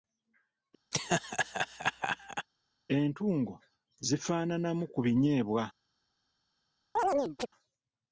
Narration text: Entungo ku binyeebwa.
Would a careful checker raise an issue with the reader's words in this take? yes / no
yes